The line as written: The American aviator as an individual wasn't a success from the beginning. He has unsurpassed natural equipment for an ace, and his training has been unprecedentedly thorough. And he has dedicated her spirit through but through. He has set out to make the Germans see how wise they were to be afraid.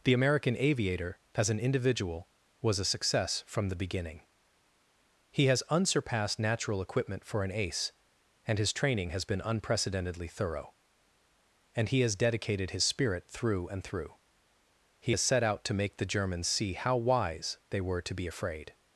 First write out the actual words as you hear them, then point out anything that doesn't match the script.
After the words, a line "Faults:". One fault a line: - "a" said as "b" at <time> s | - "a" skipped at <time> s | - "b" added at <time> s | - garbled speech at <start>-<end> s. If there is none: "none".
The American aviator as an individual was a success from the beginning. He has unsurpassed natural equipment for an ace, and his training has been unprecedentedly thorough. And he has dedicated his spirit through and through. He has set out to make the Germans see how wise they were to be afraid.
Faults:
- "wasn't" said as "was" at 2.6 s
- "her" said as "his" at 12.7 s
- "but" said as "and" at 13.7 s